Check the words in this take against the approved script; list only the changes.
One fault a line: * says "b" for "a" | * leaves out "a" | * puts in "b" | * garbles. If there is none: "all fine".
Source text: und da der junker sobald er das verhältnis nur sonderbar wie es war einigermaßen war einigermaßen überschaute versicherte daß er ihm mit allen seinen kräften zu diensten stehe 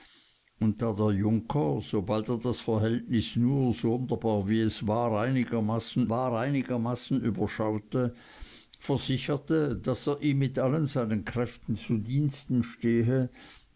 all fine